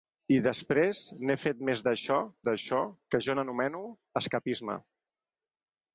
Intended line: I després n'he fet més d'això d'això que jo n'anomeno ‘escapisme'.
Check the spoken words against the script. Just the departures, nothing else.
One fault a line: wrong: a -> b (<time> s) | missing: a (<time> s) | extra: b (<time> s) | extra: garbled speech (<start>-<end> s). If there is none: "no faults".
no faults